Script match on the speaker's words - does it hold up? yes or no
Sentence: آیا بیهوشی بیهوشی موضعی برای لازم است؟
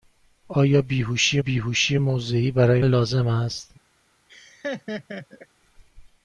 yes